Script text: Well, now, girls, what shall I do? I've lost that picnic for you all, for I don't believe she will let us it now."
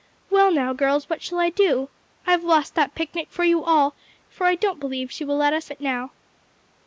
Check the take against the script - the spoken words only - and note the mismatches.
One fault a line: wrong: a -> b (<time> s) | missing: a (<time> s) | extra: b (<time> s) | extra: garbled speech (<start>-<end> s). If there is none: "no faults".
no faults